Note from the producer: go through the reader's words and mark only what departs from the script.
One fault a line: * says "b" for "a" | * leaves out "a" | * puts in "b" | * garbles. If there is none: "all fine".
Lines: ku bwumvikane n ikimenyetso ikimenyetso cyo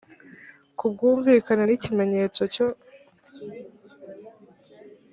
* leaves out "ikimenyetso"